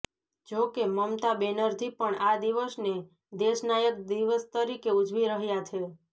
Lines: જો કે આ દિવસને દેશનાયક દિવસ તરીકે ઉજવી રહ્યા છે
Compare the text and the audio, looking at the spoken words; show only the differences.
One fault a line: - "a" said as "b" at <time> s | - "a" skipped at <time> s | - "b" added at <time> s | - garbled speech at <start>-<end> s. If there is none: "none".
- "મમતા બેનર્જી પણ" added at 0.9 s